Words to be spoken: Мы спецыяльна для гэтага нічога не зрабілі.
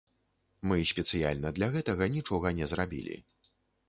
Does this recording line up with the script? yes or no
yes